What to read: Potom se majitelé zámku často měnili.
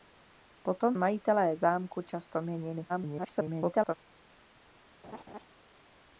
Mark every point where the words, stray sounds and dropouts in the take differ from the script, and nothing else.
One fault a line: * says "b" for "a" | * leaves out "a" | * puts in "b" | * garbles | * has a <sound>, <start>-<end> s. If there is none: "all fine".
* leaves out "se"
* garbles
* has a laugh, 5.0-5.5 s